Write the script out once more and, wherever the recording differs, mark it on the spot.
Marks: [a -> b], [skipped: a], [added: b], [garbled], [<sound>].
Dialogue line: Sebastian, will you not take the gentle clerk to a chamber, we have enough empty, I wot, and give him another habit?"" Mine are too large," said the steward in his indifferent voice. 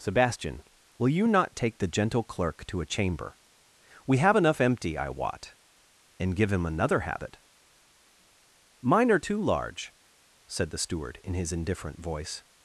Sebastian, will you not take the gentle clerk to a chamber, we have enough empty, I wot, and give him another habit?"" Mine are too large," said the steward in his indifferent voice.